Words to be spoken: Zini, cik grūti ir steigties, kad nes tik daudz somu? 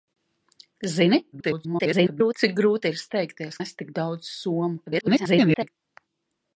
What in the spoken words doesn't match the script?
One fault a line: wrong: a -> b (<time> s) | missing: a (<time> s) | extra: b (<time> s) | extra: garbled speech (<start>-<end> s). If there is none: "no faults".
extra: garbled speech (1.3-2.3 s)
missing: kad (3.6 s)
extra: garbled speech (4.9-5.7 s)